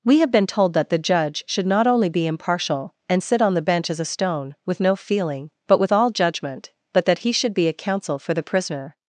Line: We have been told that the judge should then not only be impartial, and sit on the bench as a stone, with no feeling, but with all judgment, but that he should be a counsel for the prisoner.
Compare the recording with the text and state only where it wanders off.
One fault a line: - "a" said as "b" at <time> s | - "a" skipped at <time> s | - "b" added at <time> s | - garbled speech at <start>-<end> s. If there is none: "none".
- "then" skipped at 1.7 s